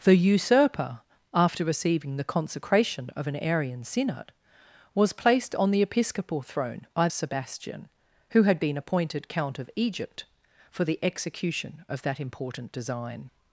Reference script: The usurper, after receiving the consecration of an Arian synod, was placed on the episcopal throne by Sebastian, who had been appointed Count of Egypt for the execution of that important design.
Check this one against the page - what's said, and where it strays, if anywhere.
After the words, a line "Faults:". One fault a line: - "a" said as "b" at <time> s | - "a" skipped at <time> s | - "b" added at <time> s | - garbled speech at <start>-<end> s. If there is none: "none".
The usurper, after receiving the consecration of an Arian synod, was placed on the episcopal throne by Sebastian, who had been appointed Count of Egypt for the execution of that important design.
Faults:
none